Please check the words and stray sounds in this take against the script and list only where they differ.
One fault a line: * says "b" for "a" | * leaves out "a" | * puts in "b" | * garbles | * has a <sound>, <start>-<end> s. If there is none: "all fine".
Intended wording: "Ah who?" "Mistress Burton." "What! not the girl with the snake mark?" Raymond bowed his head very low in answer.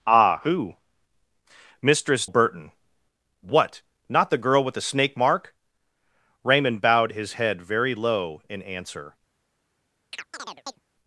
* has a chirp, 10.1-10.8 s